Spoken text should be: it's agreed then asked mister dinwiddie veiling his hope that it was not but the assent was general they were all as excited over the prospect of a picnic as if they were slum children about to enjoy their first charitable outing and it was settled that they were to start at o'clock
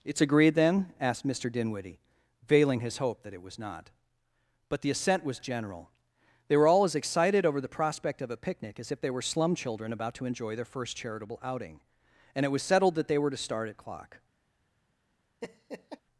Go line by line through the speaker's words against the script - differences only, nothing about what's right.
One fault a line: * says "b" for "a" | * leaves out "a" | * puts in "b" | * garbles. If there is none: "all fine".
all fine